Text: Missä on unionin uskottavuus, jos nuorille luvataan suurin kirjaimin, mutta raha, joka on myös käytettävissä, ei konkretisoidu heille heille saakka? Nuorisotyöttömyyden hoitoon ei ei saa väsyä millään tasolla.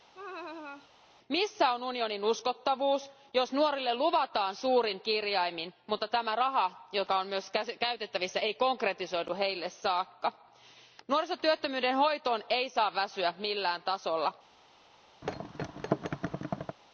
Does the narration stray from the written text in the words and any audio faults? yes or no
yes